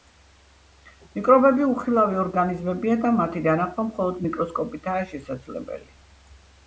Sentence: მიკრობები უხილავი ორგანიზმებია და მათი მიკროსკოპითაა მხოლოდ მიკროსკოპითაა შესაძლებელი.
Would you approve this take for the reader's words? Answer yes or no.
no